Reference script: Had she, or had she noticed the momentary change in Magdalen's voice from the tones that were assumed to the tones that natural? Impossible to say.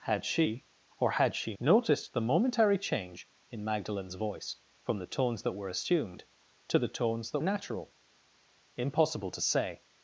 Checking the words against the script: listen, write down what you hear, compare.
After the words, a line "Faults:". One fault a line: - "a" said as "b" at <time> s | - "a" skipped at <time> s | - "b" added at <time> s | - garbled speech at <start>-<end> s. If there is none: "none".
Had she, or had she noticed the momentary change in Magdalen's voice from the tones that were assumed to the tones that natural? Impossible to say.
Faults:
none